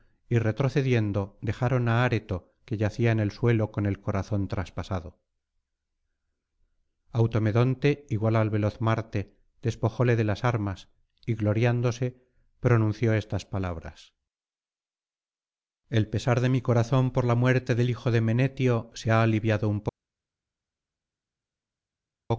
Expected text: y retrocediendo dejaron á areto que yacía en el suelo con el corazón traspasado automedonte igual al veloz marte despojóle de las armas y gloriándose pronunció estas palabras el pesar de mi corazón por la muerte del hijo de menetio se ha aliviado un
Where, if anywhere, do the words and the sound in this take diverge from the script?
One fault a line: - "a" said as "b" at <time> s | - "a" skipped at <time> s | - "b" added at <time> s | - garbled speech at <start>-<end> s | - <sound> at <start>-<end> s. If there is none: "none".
none